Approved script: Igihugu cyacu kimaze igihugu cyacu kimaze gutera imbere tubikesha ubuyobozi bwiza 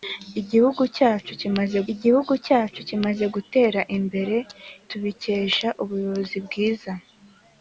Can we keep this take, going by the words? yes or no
yes